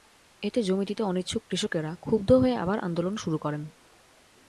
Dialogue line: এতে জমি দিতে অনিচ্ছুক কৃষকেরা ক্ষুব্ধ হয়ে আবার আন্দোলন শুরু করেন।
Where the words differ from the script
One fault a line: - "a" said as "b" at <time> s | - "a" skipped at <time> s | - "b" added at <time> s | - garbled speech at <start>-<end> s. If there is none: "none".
none